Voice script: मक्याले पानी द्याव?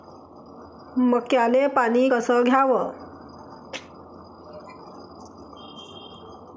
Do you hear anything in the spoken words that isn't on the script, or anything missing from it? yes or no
yes